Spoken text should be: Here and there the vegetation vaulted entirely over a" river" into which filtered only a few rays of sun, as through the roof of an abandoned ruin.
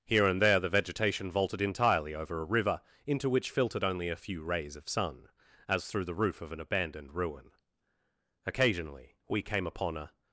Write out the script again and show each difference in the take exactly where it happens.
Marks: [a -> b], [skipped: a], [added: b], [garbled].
Here and there the vegetation vaulted entirely over a" river" into which filtered only a few rays of sun, as through the roof of an abandoned ruin. [added: Occasionally we came upon a]